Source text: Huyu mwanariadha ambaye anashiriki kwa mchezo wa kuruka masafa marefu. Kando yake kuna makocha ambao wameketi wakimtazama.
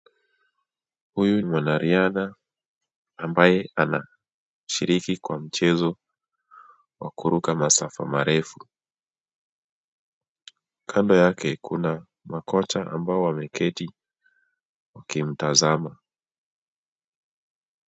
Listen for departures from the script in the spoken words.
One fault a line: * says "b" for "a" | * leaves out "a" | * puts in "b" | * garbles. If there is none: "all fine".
all fine